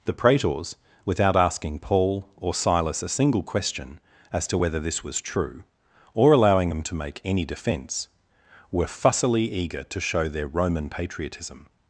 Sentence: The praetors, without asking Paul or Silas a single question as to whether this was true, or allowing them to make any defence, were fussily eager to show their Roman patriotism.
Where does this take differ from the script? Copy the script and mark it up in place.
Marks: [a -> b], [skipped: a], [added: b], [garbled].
The praetors, without asking Paul or Silas a single question as to whether this was true, or allowing them to make any defence, were fussily eager to show their Roman patriotism.